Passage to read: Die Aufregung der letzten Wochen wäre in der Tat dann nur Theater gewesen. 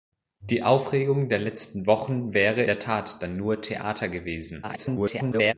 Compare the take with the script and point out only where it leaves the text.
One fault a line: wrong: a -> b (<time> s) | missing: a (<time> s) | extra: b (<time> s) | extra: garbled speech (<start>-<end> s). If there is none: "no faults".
missing: in (2.6 s)
extra: garbled speech (4.6-5.5 s)